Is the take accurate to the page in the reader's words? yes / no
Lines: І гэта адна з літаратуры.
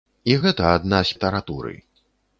yes